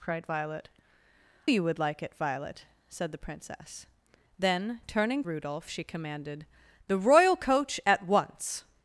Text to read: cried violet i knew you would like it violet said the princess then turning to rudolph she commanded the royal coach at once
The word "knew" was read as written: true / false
false